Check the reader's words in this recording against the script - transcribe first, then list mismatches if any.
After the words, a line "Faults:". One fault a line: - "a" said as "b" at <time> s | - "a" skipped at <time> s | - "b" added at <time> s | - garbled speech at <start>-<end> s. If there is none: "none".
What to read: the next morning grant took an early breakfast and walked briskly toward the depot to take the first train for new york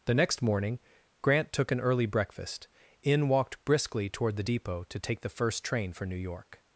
the next morning grant took an early breakfast in walked briskly toward the depot to take the first train for new york
Faults:
- "and" said as "in" at 3.0 s